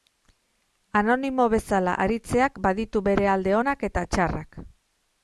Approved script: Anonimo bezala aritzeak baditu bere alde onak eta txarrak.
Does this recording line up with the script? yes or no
yes